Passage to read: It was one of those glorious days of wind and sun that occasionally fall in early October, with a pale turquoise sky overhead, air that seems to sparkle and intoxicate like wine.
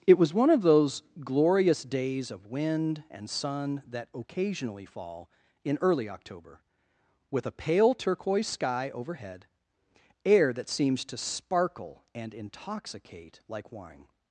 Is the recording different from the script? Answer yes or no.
no